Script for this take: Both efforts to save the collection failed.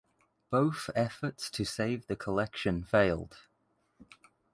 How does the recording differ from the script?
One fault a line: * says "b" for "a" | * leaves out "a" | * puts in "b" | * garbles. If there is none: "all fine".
all fine